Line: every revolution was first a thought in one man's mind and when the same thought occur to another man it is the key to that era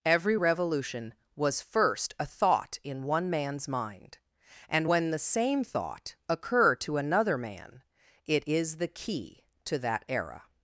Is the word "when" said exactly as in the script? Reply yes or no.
yes